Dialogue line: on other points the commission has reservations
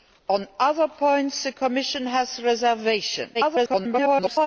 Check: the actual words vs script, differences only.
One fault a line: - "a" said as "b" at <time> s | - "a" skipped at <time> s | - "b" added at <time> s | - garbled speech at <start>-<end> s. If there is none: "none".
- garbled speech at 3.3-4.5 s